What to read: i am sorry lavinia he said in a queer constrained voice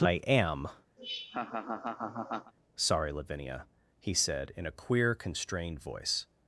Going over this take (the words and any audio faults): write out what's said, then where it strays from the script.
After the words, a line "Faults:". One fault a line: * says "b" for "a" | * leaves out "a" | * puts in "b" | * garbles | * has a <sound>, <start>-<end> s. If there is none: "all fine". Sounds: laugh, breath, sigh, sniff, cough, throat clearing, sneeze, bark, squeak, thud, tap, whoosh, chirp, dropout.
i am sorry lavinia he said in a queer constrained voice
Faults:
* has a laugh, 1.0-2.5 s